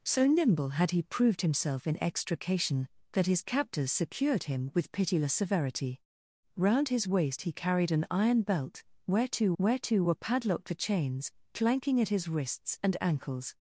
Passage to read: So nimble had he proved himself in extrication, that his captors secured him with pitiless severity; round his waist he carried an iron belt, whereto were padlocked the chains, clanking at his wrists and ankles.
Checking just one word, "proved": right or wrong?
right